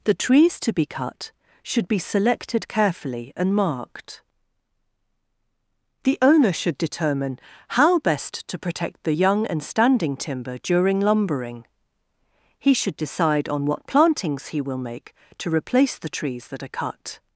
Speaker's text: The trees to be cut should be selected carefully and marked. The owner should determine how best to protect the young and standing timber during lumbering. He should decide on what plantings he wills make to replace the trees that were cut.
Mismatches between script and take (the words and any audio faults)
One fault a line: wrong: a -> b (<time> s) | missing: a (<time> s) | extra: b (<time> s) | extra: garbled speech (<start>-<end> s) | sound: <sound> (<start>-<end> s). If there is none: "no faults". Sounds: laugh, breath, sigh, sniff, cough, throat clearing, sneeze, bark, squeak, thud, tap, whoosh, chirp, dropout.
wrong: wills -> will (14.6 s)
wrong: were -> are (16.6 s)